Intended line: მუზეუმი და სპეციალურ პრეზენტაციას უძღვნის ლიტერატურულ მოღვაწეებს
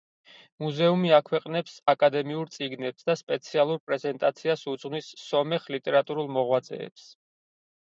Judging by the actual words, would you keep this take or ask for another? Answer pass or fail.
fail